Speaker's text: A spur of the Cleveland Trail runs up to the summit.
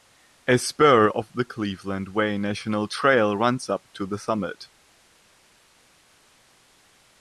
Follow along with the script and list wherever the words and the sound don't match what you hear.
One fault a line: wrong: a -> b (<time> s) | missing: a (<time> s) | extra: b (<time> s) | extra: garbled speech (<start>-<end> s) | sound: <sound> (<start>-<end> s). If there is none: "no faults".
extra: Way National (2.1 s)